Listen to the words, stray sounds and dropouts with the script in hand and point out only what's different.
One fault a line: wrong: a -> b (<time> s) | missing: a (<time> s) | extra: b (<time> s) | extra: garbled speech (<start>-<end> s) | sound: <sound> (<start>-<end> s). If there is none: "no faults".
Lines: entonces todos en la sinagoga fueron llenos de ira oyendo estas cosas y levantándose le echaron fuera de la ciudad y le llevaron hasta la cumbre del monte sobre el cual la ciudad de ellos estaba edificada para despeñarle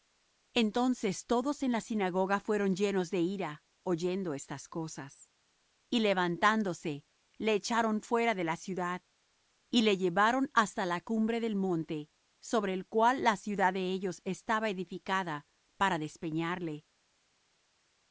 no faults